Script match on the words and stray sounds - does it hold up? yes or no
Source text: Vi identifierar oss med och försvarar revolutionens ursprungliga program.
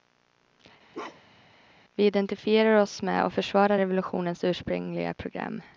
no